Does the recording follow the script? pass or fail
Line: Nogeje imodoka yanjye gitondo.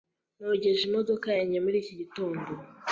fail